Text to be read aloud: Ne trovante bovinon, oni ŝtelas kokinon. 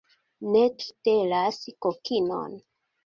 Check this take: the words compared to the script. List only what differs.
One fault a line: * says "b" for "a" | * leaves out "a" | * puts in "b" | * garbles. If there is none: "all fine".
* leaves out "trovante bovinon oni"